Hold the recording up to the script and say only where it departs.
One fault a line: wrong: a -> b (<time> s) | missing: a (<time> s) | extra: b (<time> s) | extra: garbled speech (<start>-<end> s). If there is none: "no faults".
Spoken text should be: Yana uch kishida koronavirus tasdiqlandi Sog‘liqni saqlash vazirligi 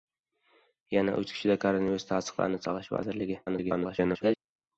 missing: Sog‘liqni (2.6 s)
extra: garbled speech (3.5-4.4 s)